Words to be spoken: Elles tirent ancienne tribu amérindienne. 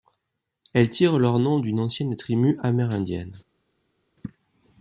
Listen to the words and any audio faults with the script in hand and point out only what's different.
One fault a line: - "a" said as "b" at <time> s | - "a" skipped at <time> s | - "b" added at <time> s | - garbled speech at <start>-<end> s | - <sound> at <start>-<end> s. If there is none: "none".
- "leur nom d'une" added at 1.2 s